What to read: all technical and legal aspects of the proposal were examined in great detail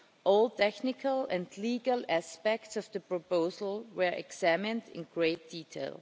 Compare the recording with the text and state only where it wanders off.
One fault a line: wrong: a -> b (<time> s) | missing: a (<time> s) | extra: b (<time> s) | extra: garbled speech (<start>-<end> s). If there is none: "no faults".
no faults